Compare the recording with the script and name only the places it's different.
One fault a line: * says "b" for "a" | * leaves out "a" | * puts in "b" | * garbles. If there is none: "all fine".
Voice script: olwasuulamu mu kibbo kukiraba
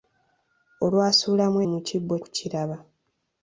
all fine